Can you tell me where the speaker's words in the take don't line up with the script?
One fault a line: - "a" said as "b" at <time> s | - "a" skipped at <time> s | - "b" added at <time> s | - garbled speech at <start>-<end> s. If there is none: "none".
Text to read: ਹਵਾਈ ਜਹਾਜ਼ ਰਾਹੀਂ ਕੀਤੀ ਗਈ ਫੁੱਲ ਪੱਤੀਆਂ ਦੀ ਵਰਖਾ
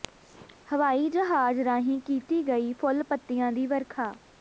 none